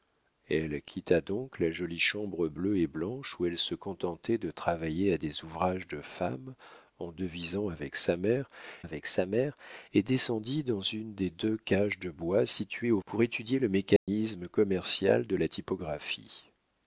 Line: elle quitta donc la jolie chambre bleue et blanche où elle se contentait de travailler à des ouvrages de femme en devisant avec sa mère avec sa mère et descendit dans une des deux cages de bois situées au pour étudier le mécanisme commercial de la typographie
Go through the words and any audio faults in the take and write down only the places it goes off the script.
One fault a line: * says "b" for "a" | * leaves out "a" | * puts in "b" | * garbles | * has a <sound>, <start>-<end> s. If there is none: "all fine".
* has a dropout, 14.0-14.1 s